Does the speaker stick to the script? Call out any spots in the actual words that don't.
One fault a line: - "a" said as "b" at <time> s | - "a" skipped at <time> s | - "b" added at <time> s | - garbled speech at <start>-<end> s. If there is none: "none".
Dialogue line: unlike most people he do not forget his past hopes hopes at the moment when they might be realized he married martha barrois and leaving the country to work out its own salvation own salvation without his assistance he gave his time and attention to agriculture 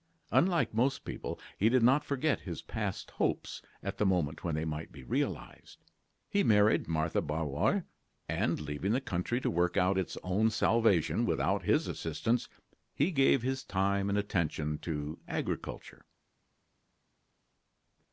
- "do" said as "did" at 1.7 s
- "hopes" skipped at 3.6 s
- "own salvation" skipped at 11.2 s